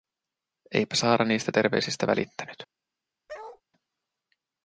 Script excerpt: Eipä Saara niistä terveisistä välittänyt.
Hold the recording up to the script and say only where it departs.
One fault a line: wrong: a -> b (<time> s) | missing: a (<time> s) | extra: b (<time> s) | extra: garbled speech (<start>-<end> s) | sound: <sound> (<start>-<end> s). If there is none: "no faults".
sound: bark (3.3-3.6 s)